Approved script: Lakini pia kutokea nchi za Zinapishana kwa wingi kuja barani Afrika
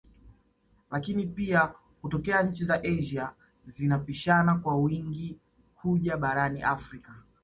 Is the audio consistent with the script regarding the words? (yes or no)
no